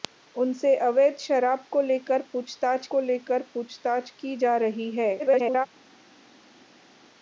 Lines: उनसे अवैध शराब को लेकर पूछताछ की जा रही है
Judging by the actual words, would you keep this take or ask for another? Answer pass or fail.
fail